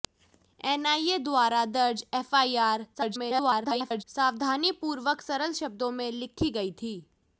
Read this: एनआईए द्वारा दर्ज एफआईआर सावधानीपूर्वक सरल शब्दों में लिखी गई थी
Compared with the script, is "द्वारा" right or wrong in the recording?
right